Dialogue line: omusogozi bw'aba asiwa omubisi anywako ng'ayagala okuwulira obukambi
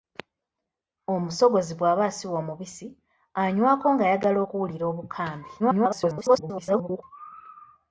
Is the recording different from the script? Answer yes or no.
yes